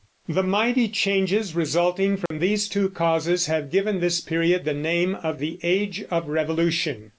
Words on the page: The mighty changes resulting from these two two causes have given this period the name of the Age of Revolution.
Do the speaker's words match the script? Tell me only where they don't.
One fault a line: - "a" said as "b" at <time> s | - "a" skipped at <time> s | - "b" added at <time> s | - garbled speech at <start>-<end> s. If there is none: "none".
- "two" skipped at 2.9 s